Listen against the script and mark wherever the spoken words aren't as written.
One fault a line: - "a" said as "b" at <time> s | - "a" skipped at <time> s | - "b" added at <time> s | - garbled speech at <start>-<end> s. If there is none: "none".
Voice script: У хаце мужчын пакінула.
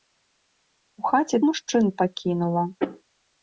none